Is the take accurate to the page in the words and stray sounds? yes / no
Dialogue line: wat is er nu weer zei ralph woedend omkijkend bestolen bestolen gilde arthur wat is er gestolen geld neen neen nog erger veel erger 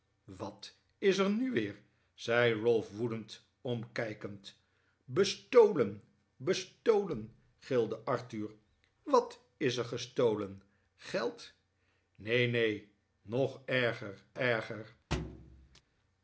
no